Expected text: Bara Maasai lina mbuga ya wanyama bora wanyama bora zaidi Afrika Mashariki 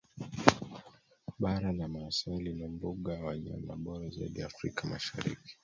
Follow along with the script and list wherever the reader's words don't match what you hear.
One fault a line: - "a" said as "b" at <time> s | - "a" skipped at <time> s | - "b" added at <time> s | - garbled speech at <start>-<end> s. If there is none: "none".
- "la" added at 1.7 s
- "wanyama bora" skipped at 4.1 s